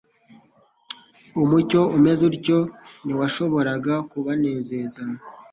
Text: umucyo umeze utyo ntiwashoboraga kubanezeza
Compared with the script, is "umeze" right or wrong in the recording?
right